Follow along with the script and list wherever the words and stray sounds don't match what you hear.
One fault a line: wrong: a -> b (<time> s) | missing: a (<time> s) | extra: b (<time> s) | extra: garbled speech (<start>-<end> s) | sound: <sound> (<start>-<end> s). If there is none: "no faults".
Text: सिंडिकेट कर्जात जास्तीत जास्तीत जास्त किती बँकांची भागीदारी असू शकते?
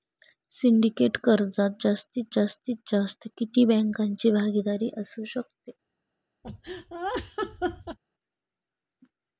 sound: laugh (6.4-8.0 s)